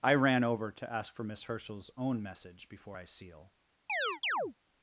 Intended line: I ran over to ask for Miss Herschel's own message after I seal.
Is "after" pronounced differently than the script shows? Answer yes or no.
yes